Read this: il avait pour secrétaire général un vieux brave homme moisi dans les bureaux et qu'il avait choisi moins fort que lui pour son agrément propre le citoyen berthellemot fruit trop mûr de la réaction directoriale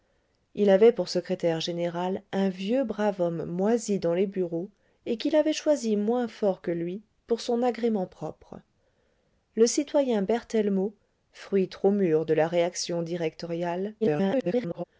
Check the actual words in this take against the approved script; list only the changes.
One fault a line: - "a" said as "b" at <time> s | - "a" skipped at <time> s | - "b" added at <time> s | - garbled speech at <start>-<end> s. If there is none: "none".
- garbled speech at 14.0-14.8 s